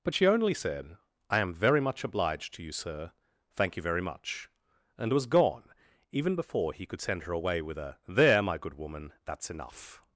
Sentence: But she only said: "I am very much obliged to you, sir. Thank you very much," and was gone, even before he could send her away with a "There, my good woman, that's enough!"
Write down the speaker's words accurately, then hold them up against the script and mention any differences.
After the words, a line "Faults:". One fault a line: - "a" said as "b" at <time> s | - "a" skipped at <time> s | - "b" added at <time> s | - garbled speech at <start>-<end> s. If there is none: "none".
But she only said: "I am very much obliged to you, sir. Thank you very much," and was gone, even before he could send her away with a "There, my good woman, that's enough!"
Faults:
none